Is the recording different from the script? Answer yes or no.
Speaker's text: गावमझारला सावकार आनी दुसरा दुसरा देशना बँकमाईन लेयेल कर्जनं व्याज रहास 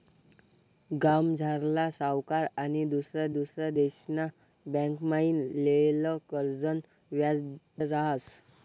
no